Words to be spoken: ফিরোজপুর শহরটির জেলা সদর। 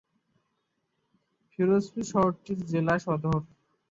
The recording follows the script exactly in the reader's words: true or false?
true